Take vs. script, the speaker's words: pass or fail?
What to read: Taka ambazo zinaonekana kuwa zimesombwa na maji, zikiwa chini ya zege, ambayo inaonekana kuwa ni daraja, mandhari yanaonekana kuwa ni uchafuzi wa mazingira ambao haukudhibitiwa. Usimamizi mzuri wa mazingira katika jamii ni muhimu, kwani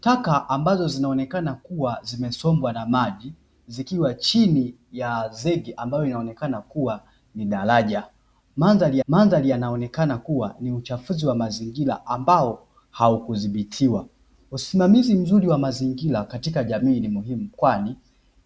fail